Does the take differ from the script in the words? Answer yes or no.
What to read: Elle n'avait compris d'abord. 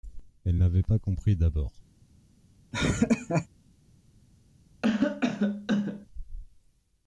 yes